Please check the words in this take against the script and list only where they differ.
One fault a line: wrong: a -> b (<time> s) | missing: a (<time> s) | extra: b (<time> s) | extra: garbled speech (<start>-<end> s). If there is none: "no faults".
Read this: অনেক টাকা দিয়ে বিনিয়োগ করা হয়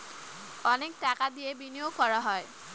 no faults